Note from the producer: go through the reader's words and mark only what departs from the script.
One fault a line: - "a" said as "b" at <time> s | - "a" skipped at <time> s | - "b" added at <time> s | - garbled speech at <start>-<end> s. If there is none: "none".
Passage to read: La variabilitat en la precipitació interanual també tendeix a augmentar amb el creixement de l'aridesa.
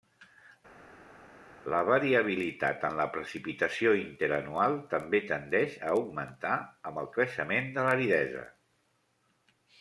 none